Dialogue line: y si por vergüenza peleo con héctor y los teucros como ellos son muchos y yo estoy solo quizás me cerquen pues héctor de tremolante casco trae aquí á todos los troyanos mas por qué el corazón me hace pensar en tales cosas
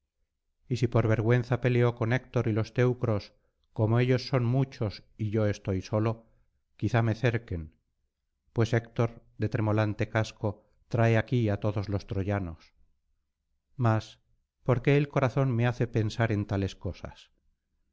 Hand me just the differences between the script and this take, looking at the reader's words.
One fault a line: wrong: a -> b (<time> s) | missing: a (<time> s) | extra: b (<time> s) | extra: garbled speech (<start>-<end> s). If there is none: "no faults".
no faults